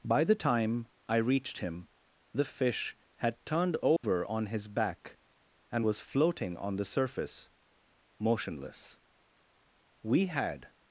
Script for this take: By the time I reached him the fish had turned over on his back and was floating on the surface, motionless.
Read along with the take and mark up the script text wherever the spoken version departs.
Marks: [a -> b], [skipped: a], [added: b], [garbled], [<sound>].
By the time I reached him the fish had turned over [dropout] on his back and was floating on the surface, motionless. [added: We had]